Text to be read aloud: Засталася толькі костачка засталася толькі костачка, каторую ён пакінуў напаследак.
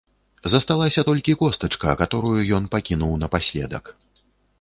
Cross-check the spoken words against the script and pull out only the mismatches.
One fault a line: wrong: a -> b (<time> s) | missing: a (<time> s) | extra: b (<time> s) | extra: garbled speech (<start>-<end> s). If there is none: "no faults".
missing: засталася толькі костачка (1.9 s)